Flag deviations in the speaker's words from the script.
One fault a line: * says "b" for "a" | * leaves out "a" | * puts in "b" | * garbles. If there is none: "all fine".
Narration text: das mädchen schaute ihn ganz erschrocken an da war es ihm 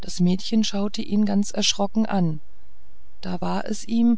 all fine